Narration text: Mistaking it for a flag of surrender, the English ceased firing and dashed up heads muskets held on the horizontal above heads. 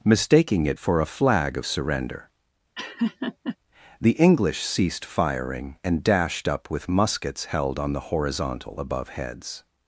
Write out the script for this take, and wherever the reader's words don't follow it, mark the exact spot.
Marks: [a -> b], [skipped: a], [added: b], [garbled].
Mistaking it for a flag of surrender, the English ceased firing and dashed up [heads -> with] muskets held on the horizontal above heads.